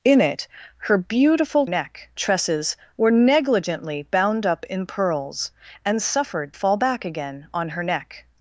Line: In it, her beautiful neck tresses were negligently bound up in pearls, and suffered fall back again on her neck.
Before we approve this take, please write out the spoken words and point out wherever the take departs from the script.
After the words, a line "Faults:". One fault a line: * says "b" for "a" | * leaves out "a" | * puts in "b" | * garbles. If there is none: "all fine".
In it, her beautiful neck tresses were negligently bound up in pearls, and suffered fall back again on her neck.
Faults:
all fine